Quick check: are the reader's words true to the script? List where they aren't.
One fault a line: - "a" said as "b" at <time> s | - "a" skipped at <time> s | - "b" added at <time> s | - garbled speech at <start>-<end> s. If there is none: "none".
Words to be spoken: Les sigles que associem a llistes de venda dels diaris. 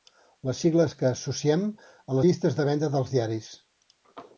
none